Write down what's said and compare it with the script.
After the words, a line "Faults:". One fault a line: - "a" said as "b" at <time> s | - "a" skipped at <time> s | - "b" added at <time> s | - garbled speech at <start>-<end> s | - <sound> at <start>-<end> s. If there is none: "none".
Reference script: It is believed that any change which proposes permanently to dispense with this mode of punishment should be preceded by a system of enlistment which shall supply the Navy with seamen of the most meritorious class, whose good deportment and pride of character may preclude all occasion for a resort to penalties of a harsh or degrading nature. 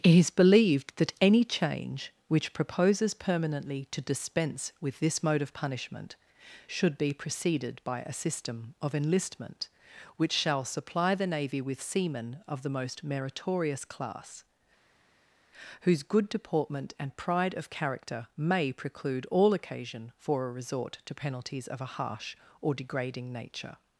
It is believed that any change which proposes permanently to dispense with this mode of punishment should be preceded by a system of enlistment which shall supply the Navy with seamen of the most meritorious class, whose good deportment and pride of character may preclude all occasion for a resort to penalties of a harsh or degrading nature.
Faults:
none